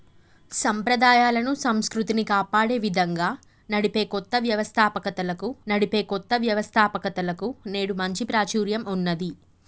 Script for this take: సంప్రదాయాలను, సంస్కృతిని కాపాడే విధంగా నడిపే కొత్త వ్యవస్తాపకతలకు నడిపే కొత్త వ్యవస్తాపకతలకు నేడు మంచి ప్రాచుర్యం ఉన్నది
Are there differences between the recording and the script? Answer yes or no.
no